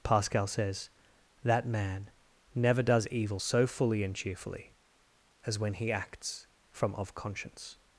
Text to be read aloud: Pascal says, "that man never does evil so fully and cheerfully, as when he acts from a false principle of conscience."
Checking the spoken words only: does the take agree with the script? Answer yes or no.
no